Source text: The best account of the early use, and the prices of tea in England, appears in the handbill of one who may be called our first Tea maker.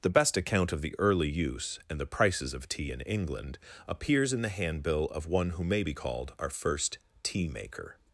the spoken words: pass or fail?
pass